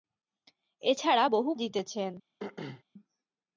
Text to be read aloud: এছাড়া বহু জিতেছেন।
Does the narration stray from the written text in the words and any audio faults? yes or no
yes